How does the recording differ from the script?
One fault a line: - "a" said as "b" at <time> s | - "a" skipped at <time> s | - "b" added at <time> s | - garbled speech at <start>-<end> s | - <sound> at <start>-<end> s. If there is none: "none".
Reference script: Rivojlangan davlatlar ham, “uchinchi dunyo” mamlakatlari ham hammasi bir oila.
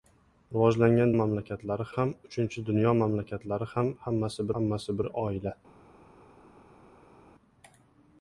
- "davlatlar" said as "mamlakatlari" at 1.2 s
- "hammasi" added at 4.6 s